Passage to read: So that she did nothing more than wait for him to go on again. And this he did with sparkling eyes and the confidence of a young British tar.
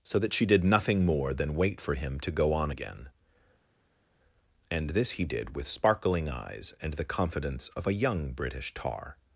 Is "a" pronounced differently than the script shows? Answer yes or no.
no